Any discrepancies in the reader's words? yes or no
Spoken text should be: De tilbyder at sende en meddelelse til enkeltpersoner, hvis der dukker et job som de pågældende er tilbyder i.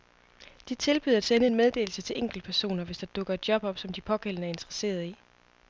yes